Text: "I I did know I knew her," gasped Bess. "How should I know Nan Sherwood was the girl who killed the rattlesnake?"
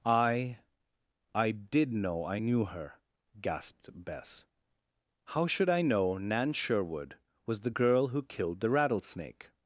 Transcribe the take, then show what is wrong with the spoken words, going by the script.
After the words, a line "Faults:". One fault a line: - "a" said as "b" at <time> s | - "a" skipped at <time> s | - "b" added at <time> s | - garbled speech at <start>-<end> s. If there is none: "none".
"I I did know I knew her," gasped Bess. "How should I know Nan Sherwood was the girl who killed the rattlesnake?"
Faults:
none